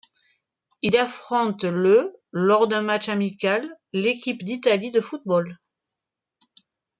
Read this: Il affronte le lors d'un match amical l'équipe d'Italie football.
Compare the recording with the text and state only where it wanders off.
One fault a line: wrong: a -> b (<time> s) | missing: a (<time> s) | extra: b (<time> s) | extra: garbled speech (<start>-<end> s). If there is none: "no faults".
extra: de (4.9 s)